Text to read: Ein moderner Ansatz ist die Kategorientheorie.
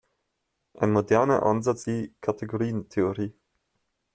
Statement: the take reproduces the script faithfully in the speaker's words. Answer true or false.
false